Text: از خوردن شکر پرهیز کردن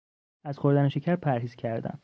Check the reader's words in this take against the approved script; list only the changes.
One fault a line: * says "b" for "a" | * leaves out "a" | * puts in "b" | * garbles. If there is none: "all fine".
all fine